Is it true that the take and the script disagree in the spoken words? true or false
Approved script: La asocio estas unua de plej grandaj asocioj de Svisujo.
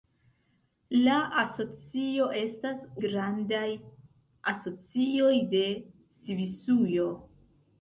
true